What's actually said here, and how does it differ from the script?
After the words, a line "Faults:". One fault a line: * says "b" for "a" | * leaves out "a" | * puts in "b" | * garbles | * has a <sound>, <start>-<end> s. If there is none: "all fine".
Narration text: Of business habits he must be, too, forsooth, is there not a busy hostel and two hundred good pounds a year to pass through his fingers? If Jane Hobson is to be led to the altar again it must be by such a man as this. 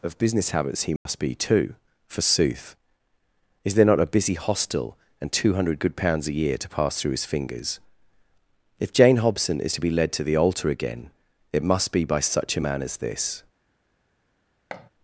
Of business habits he must be, too, forsooth, is there not a busy hostel and two hundred good pounds a year to pass through his fingers? If Jane Hobson is to be led to the altar again it must be by such a man as this.
Faults:
* has a dropout, 1.0-1.1 s
* has a thud, 14.7-14.9 s